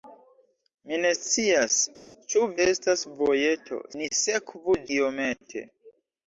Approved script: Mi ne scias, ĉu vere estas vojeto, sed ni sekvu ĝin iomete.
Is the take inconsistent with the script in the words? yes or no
yes